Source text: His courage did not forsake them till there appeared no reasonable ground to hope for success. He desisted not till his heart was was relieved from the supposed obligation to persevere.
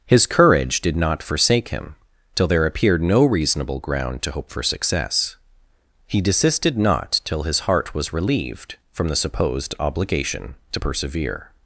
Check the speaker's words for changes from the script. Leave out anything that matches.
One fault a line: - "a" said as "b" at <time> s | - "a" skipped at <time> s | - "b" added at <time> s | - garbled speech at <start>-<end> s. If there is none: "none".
- "them" said as "him" at 1.7 s
- "was" skipped at 8.1 s